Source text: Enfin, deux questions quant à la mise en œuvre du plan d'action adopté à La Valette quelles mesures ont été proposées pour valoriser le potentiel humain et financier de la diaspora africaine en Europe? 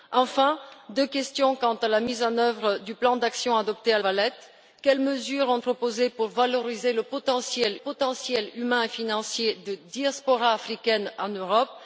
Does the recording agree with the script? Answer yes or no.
no